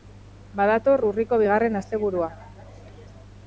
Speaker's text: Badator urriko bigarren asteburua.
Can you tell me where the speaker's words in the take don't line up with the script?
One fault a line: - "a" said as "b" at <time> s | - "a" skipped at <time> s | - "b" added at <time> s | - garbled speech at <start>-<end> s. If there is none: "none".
none